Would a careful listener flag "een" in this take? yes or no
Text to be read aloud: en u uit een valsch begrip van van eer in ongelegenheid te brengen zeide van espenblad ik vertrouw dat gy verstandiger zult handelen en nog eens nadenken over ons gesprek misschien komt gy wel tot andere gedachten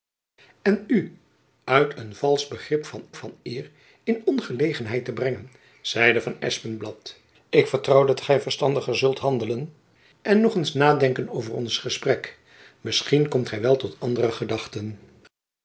no